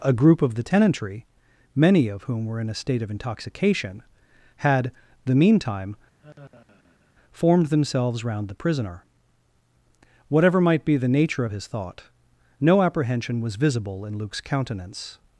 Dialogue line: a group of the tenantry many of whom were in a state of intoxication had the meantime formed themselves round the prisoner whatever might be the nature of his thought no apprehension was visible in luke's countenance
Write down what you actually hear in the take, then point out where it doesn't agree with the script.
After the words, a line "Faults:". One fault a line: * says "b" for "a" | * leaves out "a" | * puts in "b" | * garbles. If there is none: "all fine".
a group of the tenantry many of whom were in a state of intoxication had the meantime formed themselves round the prisoner whatever might be the nature of his thought no apprehension was visible in luke's countenance
Faults:
all fine